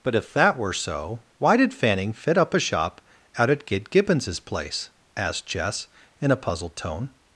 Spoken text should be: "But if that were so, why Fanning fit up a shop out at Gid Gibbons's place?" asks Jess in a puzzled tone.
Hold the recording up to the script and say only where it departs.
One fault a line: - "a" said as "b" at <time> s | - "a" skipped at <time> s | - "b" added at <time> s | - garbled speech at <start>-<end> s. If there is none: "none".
- "did" added at 1.6 s
- "asks" said as "asked" at 5.2 s